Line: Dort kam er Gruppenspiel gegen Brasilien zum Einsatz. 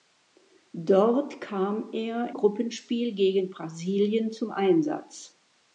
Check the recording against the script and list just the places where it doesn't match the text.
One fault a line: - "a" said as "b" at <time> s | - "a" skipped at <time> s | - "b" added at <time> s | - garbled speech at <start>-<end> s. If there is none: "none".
none